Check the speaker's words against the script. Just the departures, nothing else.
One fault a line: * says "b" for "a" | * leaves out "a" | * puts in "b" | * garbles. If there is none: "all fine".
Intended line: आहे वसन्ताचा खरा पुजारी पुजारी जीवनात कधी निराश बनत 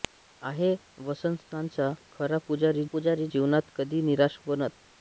all fine